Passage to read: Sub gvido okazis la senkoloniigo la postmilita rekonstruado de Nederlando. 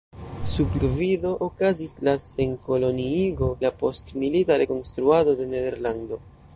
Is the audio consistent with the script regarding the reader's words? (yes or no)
yes